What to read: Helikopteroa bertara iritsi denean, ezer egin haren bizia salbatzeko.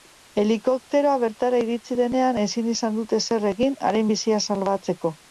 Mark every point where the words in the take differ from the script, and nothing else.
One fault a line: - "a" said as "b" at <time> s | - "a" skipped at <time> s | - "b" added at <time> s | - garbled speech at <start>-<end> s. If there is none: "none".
- "ezin izan dute" added at 2.4 s